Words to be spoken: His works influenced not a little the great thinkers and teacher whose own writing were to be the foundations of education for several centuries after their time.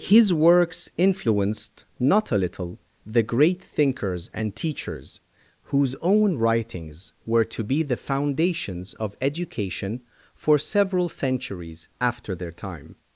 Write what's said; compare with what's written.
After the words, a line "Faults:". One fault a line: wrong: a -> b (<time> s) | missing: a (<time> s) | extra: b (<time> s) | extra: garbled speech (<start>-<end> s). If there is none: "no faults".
His works influenced not a little the great thinkers and teachers whose own writings were to be the foundations of education for several centuries after their time.
Faults:
wrong: teacher -> teachers (4.5 s)
wrong: writing -> writings (6.4 s)